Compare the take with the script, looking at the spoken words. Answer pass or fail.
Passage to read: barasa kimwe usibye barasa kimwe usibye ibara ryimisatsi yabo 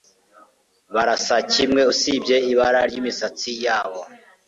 fail